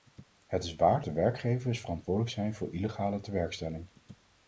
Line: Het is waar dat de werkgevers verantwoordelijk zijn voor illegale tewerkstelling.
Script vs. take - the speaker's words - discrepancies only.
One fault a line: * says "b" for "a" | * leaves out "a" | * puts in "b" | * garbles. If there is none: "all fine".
* leaves out "dat"